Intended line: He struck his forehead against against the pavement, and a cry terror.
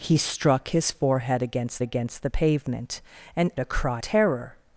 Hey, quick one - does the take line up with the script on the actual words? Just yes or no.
yes